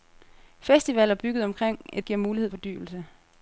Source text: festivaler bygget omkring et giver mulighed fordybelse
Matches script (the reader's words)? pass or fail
pass